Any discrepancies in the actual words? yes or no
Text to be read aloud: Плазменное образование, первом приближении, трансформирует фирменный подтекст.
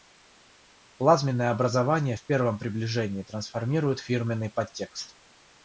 yes